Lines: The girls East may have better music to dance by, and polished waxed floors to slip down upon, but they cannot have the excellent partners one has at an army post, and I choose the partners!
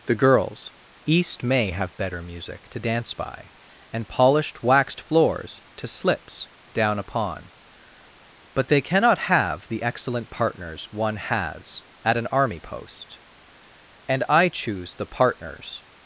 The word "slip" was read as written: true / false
false